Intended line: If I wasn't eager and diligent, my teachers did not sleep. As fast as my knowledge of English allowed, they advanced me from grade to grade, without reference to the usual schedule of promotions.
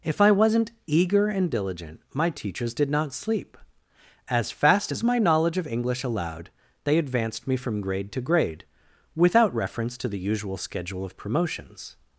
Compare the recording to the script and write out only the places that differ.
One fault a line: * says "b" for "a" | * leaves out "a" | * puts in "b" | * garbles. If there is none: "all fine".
all fine